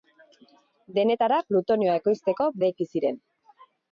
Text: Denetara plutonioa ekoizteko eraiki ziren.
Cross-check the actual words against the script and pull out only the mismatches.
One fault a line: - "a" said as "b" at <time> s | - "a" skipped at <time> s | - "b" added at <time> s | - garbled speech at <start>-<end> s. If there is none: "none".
none